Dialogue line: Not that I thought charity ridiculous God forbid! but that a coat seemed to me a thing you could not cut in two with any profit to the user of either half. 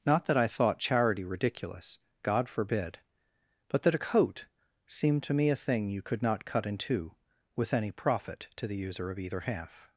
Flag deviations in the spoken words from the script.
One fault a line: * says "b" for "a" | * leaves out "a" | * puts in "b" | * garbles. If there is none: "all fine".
all fine